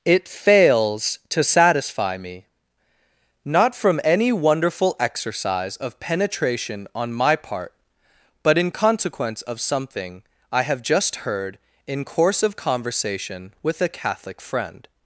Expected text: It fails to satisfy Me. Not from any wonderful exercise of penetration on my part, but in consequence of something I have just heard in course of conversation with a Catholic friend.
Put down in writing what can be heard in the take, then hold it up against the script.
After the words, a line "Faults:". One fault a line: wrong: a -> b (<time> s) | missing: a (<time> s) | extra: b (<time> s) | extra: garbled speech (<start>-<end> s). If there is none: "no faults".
It fails to satisfy Me. Not from any wonderful exercise of penetration on my part, but in consequence of something I have just heard in course of conversation with a Catholic friend.
Faults:
no faults